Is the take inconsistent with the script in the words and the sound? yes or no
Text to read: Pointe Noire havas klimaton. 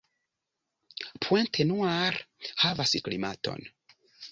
no